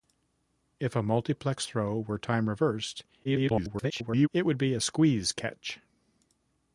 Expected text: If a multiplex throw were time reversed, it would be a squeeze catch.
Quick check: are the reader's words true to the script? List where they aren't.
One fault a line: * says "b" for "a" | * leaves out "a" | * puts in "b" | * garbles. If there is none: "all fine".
* garbles